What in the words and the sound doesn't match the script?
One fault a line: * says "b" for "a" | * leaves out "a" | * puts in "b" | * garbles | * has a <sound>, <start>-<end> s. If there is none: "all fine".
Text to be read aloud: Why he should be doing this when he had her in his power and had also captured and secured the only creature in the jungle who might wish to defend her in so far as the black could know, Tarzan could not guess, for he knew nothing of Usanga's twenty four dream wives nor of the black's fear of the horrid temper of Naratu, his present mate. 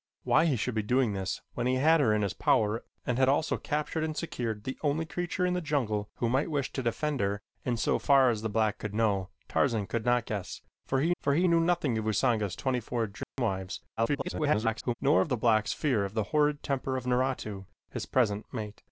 * puts in "for he"
* has a dropout, 13.2-13.4 s
* garbles